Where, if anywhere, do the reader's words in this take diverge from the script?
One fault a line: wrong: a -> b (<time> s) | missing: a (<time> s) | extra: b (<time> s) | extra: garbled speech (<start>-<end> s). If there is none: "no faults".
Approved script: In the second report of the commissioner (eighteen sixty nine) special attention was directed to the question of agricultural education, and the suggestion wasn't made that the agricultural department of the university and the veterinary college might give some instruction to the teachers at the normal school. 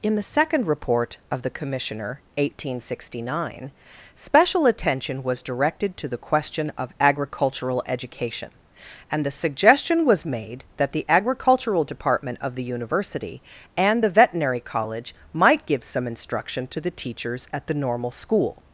wrong: wasn't -> was (10.0 s)